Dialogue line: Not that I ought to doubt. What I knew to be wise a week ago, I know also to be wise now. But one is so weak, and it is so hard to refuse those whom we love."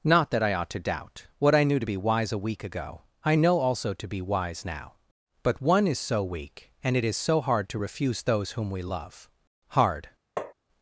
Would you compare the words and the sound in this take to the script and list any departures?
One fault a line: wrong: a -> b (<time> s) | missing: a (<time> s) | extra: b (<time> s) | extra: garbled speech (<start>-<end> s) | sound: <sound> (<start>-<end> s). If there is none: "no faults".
extra: Hard (9.7 s)
sound: tap (10.4-10.5 s)